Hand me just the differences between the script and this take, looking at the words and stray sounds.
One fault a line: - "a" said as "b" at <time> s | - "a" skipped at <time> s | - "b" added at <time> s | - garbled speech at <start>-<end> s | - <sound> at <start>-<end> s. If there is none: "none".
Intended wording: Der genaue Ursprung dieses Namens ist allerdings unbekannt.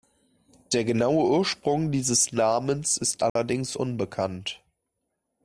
- dropout at 3.3-3.4 s